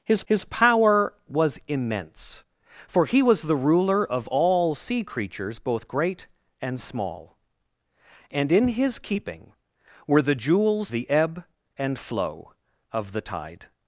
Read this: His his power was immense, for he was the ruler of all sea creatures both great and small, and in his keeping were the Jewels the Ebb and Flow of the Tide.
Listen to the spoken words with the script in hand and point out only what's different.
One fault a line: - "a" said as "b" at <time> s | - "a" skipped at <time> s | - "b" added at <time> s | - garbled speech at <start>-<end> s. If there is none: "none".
none